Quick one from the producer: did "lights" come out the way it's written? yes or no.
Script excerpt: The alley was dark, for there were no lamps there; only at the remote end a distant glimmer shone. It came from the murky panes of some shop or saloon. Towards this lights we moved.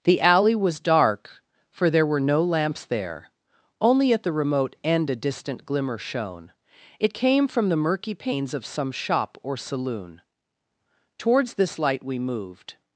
no